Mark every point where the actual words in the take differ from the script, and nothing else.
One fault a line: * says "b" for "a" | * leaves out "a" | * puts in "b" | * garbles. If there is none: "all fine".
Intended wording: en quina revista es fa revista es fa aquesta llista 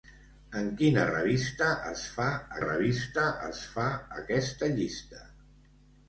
all fine